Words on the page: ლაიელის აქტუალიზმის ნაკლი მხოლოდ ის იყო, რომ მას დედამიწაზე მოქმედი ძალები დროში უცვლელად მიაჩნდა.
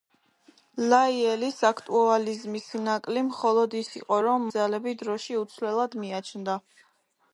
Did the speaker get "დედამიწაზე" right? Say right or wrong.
wrong